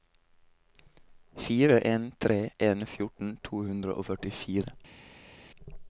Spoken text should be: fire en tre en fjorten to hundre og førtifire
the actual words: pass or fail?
pass